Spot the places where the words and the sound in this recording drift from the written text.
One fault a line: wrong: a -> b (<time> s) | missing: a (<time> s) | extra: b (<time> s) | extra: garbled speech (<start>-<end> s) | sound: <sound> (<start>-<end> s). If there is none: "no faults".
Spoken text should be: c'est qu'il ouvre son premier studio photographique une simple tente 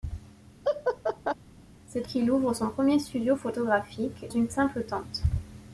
sound: laugh (0.6-1.3 s)